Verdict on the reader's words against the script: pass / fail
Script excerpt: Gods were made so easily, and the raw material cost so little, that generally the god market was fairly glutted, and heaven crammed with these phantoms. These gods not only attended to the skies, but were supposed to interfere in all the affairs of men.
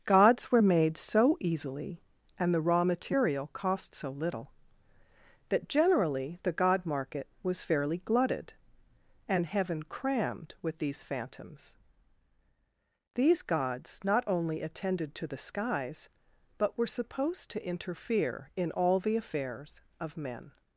pass